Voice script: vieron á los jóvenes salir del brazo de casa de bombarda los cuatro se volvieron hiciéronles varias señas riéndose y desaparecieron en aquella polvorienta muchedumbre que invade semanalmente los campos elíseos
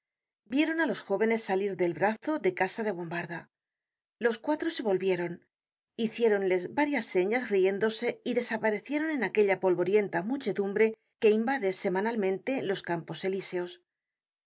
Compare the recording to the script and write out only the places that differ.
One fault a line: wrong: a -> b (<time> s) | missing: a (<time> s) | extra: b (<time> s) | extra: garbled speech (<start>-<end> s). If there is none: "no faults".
no faults